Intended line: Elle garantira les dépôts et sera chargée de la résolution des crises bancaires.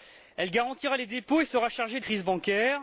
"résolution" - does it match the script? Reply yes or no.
no